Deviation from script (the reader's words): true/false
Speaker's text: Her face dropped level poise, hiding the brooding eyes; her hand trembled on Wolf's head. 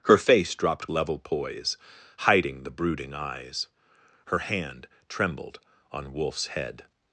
false